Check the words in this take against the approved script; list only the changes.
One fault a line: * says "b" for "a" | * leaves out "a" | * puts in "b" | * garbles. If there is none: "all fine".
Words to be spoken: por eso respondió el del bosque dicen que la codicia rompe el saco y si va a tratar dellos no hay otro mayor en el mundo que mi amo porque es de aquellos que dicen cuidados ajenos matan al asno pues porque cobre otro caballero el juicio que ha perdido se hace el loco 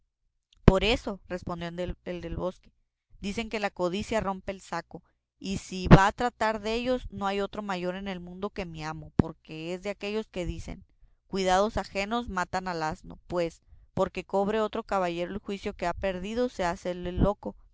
all fine